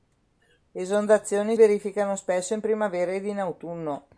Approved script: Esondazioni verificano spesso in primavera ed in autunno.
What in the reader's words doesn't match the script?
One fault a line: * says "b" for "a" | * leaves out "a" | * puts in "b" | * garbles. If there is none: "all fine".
all fine